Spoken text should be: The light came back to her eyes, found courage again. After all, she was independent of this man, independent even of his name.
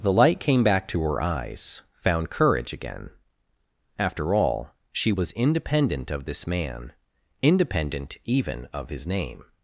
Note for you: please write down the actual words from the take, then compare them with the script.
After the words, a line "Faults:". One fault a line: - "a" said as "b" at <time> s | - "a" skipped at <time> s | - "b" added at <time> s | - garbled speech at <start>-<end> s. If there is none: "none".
The light came back to her eyes, found courage again. After all, she was independent of this man, independent even of his name.
Faults:
none